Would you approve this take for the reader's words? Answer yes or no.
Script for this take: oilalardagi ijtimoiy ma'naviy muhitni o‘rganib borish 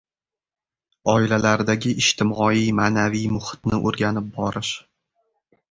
yes